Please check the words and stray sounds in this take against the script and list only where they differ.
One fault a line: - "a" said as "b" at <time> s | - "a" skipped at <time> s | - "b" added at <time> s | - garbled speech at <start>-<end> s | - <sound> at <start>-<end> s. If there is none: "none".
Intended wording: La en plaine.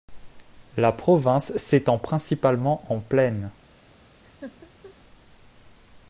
- "province s'étend principalement" added at 0.9 s
- laugh at 4.2-4.9 s